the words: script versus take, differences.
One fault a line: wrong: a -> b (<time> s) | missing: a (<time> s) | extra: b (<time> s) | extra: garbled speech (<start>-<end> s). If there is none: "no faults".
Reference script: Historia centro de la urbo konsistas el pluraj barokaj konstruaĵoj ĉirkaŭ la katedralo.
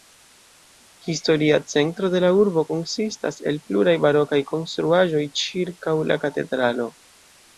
no faults